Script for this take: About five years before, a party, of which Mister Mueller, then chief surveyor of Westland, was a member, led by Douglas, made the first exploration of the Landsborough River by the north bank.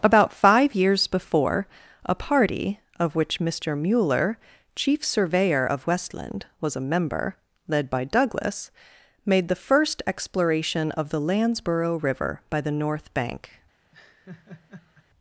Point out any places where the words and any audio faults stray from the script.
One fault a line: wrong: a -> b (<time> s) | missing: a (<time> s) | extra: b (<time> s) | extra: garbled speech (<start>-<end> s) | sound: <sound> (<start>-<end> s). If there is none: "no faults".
missing: then (4.4 s)
sound: laugh (13.9-15.1 s)